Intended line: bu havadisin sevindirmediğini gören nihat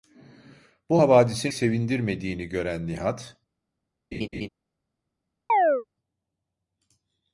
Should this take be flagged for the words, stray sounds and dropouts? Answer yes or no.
yes